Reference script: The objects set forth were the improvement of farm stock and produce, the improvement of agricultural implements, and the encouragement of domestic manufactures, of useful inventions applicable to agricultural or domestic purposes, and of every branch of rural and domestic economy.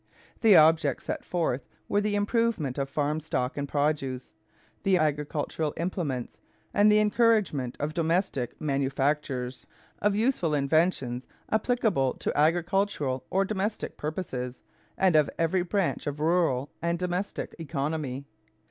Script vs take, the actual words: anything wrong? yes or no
yes